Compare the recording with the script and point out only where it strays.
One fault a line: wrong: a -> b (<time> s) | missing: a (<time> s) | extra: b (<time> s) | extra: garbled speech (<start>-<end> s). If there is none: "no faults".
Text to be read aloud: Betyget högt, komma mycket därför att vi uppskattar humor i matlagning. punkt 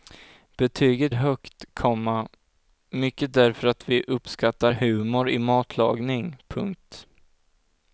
no faults